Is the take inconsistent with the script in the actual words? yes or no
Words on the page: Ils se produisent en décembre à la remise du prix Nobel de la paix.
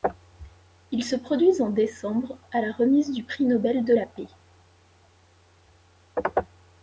no